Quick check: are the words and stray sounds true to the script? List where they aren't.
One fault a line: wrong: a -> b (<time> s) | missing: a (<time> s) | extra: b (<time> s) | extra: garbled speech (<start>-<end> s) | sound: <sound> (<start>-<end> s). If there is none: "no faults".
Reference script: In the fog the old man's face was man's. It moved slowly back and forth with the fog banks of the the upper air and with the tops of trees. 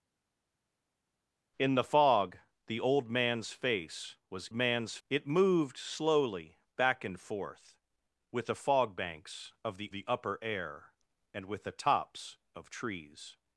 no faults